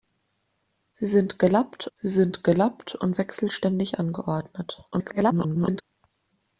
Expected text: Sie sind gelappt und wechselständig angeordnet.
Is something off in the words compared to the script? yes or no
yes